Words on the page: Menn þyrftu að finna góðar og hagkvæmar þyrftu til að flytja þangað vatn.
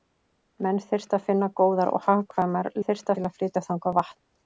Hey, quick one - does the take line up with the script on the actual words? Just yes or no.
yes